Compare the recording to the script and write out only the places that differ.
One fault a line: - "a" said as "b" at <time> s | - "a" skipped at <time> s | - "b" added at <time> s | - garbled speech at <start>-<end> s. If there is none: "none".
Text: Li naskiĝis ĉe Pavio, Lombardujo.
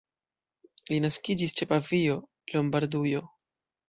none